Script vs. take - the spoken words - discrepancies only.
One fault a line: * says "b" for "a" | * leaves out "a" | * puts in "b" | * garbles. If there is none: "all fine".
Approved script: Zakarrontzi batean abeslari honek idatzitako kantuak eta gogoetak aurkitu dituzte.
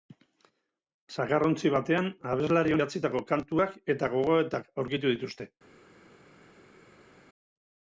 * leaves out "honek"